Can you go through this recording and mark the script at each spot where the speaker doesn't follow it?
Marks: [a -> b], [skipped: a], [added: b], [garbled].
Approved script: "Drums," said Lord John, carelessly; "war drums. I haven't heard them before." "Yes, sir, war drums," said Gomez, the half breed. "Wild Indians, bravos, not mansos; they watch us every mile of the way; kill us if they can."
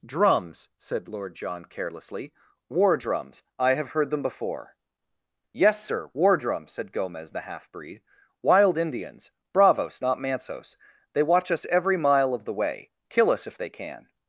"Drums," said Lord John, carelessly; "war drums. I [haven't -> have] heard them before." "Yes, sir, war drums," said Gomez, the half breed. "Wild Indians, bravos, not mansos; they watch us every mile of the way; kill us if they can."